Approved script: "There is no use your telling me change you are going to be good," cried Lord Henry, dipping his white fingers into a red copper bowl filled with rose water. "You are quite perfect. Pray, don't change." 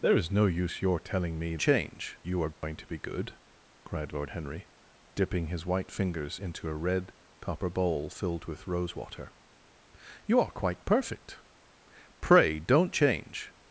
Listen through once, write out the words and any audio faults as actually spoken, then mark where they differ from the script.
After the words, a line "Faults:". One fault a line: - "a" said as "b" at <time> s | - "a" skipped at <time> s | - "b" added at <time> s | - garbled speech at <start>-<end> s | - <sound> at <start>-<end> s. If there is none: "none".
"There is no use your telling me change you are going to be good," cried Lord Henry, dipping his white fingers into a red copper bowl filled with rose water. "You are quite perfect. Pray, don't change."
Faults:
- dropout at 2.5-2.6 s